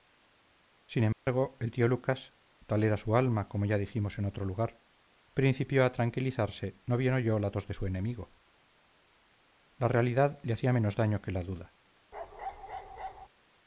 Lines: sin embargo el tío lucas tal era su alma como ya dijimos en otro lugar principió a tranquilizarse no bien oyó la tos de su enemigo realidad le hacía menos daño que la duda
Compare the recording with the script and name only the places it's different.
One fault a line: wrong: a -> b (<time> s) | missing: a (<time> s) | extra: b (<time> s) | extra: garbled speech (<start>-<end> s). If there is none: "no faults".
extra: la (9.8 s)